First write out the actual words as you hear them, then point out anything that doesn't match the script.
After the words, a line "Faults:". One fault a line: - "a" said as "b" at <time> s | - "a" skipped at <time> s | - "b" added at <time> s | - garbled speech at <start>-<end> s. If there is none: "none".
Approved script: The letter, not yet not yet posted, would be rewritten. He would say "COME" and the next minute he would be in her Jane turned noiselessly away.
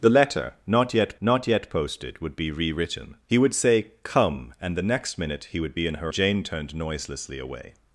The letter, not yet not yet posted, would be rewritten. He would say "COME" and the next minute he would be in her Jane turned noiselessly away.
Faults:
none